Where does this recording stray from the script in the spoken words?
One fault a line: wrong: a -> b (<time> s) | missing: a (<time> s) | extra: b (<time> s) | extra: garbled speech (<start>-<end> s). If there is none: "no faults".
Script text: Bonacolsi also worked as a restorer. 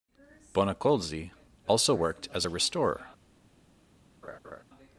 no faults